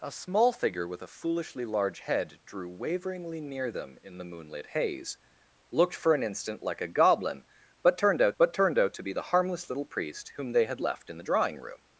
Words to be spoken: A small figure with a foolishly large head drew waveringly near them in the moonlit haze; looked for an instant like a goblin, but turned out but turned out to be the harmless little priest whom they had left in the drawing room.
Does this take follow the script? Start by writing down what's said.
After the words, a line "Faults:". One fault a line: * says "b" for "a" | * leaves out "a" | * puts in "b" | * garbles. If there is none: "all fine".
A small figure with a foolishly large head drew waveringly near them in the moonlit haze; looked for an instant like a goblin, but turned out but turned out to be the harmless little priest whom they had left in the drawing room.
Faults:
all fine